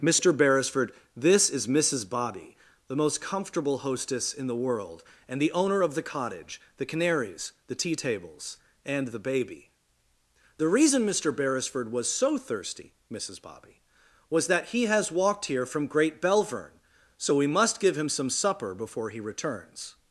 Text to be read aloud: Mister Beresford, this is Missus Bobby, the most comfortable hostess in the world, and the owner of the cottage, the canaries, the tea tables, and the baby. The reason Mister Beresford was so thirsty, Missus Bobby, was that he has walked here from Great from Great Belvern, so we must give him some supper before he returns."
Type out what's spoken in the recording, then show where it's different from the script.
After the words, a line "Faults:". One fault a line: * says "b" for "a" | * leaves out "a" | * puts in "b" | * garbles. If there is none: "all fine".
Mister Beresford, this is Missus Bobby, the most comfortable hostess in the world, and the owner of the cottage, the canaries, the tea tables, and the baby. The reason Mister Beresford was so thirsty, Missus Bobby, was that he has walked here from Great Belvern, so we must give him some supper before he returns."
Faults:
* leaves out "from Great"